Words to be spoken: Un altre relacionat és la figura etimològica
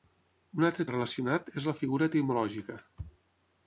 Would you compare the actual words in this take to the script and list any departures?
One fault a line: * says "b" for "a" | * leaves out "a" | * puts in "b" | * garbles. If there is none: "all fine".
all fine